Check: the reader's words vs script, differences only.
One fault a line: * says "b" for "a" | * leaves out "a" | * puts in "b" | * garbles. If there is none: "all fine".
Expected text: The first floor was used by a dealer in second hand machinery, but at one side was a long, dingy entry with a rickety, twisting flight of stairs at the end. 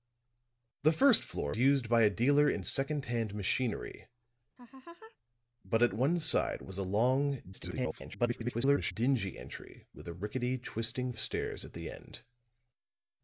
* leaves out "was"
* garbles
* leaves out "flight"